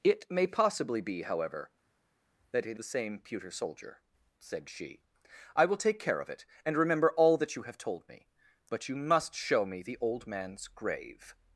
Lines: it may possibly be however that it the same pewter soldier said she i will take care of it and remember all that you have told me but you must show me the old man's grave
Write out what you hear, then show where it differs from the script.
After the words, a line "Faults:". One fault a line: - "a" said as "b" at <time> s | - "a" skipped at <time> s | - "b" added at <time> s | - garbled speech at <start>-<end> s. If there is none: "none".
it may possibly be however that it the same pewter soldier said she i will take care of it and remember all that you have told me but you must show me the old man's grave
Faults:
none